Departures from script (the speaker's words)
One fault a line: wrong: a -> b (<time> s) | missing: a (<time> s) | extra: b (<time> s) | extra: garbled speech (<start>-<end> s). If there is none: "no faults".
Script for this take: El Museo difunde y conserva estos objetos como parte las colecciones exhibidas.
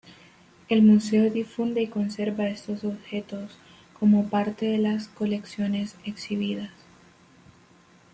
extra: de (4.6 s)